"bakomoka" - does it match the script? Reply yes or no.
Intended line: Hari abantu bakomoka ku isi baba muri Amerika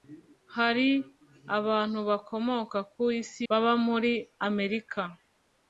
yes